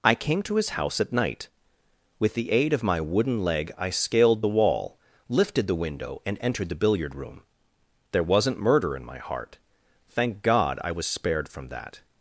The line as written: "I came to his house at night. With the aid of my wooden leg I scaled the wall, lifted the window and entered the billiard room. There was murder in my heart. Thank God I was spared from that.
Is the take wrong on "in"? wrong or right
right